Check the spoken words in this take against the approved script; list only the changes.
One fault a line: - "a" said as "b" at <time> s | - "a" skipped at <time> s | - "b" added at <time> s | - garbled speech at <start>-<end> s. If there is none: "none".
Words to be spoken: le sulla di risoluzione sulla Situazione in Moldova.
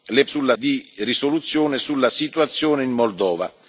none